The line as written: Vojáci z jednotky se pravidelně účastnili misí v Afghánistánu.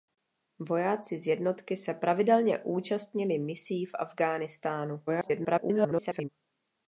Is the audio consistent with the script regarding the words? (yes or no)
no